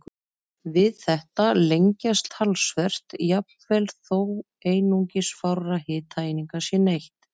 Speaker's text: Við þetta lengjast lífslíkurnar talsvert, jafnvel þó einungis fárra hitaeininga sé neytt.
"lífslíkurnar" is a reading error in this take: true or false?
true